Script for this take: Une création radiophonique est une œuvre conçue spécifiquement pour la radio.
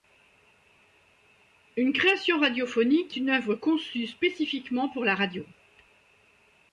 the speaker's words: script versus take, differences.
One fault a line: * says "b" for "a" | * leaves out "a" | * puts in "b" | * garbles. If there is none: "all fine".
* leaves out "est"